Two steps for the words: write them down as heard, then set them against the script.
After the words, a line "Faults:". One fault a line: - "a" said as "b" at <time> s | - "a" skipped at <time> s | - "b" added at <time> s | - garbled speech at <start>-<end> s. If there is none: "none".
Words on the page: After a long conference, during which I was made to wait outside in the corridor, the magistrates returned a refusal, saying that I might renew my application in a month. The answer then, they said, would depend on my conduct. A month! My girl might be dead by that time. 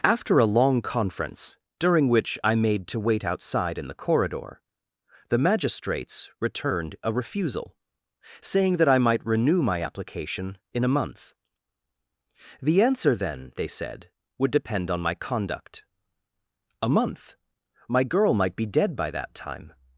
After a long conference, during which I made to wait outside in the corridor, the magistrates returned a refusal, saying that I might renew my application in a month. The answer then, they said, would depend on my conduct. A month! My girl might be dead by that time.
Faults:
- "was" skipped at 2.5 s